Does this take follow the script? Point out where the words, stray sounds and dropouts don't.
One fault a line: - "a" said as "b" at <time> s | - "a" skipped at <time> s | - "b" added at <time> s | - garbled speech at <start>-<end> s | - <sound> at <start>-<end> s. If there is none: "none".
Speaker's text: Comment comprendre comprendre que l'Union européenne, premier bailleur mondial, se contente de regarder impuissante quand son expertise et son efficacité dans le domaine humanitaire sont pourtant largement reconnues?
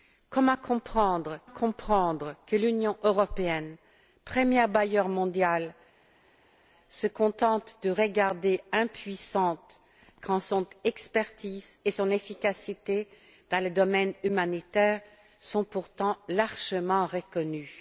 none